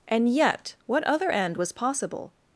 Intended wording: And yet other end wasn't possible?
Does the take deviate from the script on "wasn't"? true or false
true